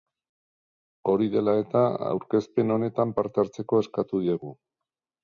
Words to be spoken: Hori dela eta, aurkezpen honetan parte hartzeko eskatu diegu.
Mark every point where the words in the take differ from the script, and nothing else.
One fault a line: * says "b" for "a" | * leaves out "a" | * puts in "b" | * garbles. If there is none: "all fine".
all fine